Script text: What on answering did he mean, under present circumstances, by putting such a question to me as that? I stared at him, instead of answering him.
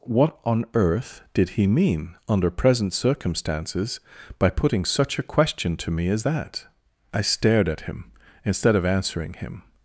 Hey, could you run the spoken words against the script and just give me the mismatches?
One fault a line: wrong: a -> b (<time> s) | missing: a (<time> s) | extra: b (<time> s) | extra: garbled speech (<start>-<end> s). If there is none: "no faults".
wrong: answering -> earth (0.7 s)